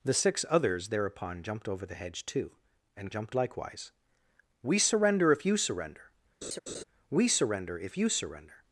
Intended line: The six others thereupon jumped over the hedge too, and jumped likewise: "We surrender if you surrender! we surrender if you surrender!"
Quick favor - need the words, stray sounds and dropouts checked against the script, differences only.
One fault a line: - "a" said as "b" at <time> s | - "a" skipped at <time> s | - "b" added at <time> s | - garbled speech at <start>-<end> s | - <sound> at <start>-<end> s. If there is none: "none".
- laugh at 6.4-6.8 s